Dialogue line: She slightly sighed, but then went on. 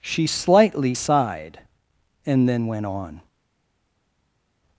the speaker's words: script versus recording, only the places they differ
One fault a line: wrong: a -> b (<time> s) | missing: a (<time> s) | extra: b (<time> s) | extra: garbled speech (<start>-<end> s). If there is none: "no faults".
wrong: but -> and (2.3 s)